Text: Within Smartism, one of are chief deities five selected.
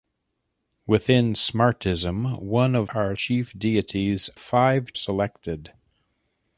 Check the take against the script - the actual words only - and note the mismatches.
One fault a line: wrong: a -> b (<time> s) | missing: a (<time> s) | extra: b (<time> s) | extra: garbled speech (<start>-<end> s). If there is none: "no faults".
no faults